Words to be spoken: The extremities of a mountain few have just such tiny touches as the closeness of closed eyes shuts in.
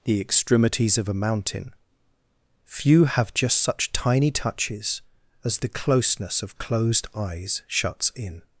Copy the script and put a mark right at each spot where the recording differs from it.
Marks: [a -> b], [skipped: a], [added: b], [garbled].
The extremities of a mountain few have just such tiny touches as the closeness of closed eyes shuts in.